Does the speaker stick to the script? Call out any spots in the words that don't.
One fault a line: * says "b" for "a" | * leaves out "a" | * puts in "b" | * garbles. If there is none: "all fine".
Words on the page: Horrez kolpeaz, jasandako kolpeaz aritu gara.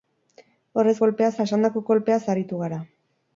all fine